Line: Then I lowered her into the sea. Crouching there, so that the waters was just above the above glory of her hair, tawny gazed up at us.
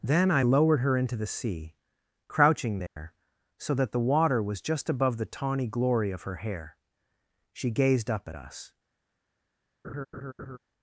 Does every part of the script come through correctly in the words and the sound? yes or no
no